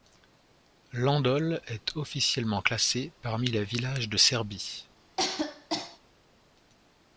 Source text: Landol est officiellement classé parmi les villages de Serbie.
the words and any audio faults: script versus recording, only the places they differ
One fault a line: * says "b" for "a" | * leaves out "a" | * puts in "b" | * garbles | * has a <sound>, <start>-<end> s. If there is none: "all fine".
* has a cough, 5.2-6.0 s